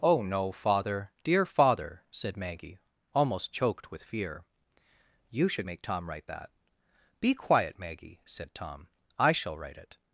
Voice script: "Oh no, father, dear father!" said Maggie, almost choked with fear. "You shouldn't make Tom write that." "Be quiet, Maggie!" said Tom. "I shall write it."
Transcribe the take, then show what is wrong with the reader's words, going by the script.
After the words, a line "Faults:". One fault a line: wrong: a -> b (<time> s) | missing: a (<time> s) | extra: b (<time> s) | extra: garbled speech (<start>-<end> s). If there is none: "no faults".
"Oh no, father, dear father!" said Maggie, almost choked with fear. "You should make Tom write that." "Be quiet, Maggie!" said Tom. "I shall write it."
Faults:
wrong: shouldn't -> should (5.5 s)